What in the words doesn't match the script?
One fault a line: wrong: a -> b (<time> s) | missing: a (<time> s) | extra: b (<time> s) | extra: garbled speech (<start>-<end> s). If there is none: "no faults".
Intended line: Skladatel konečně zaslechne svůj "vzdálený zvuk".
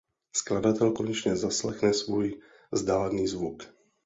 no faults